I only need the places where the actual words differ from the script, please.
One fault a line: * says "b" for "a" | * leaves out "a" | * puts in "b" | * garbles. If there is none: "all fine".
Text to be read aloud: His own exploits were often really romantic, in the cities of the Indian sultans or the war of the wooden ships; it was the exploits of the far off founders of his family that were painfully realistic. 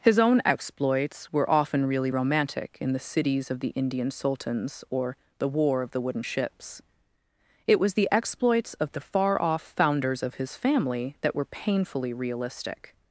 all fine